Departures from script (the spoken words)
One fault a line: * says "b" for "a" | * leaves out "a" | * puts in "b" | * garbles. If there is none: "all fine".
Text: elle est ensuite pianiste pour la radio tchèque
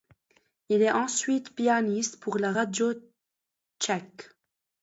* says "il" for "elle"